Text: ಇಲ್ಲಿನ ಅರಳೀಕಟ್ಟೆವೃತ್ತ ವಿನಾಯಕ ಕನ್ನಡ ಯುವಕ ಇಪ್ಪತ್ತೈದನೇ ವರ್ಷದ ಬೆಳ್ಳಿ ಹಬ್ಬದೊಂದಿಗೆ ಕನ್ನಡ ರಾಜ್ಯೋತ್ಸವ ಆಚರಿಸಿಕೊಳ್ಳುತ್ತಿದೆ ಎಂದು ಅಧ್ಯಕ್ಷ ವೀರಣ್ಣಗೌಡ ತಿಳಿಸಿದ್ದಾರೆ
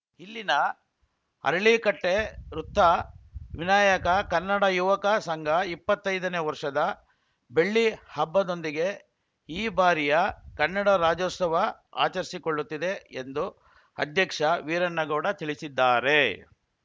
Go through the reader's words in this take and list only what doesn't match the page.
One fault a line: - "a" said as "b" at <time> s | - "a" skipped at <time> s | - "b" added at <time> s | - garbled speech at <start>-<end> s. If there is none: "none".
- "ಸಂಘ" added at 5.2 s
- "ಈ ಬಾರಿಯ" added at 9.5 s